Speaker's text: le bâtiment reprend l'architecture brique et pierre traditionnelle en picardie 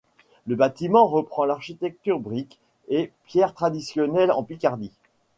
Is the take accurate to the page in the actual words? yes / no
yes